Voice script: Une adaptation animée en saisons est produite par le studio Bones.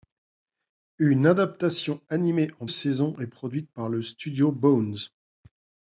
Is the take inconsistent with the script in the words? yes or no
no